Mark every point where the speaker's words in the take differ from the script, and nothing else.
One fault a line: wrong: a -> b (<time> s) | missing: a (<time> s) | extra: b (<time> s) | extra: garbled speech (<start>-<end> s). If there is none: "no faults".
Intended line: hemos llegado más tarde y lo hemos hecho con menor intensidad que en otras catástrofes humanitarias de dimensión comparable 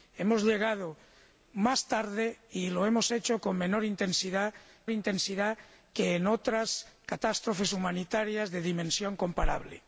extra: intensidad (4.9 s)